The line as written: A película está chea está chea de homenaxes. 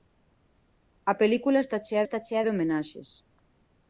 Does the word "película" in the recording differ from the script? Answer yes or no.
no